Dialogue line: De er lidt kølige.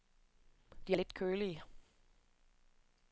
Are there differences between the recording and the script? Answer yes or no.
no